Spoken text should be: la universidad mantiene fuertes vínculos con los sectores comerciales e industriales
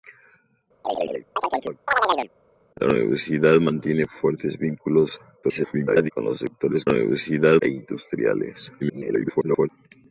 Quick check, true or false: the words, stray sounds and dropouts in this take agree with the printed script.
false